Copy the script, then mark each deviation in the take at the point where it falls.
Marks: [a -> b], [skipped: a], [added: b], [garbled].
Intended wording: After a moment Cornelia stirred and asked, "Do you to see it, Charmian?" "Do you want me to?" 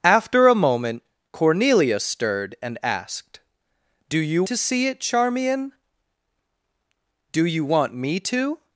After a moment Cornelia stirred and asked, "Do you to see it, Charmian?" "Do you want me to?"